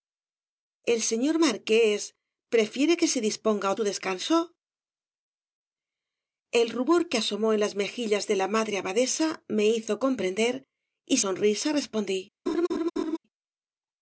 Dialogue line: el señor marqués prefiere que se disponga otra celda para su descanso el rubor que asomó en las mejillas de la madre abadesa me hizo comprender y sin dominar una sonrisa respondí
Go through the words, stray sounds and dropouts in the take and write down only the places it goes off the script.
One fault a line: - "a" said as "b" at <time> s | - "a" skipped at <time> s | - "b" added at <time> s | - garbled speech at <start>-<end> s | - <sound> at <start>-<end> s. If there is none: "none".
- "otra celda para" skipped at 3.7 s
- "sin dominar una" skipped at 11.2 s
- laugh at 12.5-13.2 s